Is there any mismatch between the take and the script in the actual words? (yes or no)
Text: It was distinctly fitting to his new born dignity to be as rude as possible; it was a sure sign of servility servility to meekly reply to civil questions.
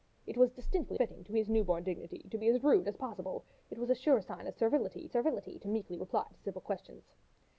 no